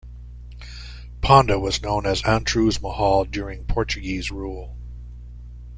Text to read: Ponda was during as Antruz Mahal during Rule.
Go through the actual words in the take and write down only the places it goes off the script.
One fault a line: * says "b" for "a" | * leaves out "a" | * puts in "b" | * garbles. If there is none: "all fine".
* says "known" for "during"
* puts in "Portuguese"